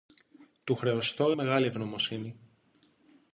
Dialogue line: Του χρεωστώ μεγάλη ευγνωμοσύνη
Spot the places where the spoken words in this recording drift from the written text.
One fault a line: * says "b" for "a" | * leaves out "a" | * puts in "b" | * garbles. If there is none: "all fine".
all fine